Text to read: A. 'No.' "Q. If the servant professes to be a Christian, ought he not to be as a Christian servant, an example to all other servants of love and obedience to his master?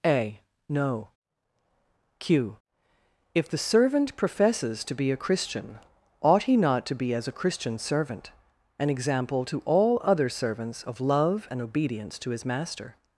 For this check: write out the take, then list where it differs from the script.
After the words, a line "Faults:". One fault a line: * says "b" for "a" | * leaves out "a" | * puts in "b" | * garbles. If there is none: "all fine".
A. 'No.' "Q. If the servant professes to be a Christian, ought he not to be as a Christian servant, an example to all other servants of love and obedience to his master?
Faults:
all fine